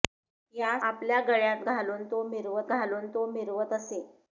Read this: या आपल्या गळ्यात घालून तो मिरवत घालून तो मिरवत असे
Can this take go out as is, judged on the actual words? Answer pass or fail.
pass